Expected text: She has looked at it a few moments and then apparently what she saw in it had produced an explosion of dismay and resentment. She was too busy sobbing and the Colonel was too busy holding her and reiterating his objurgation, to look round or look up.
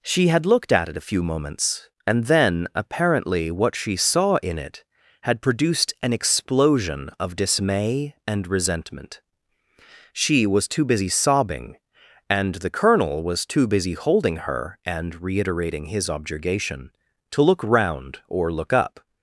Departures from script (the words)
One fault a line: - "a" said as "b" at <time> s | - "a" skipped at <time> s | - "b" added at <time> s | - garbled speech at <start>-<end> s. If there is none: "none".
- "has" said as "had" at 0.3 s